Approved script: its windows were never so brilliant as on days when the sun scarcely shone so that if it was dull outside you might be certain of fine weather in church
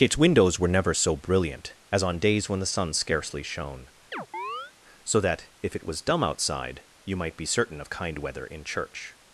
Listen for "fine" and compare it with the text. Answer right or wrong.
wrong